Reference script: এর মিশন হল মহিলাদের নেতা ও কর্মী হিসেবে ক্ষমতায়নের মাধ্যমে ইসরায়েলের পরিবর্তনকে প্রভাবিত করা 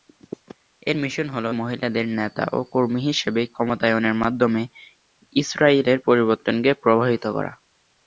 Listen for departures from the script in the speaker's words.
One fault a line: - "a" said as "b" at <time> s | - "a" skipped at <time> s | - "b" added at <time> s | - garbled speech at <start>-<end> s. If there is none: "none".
none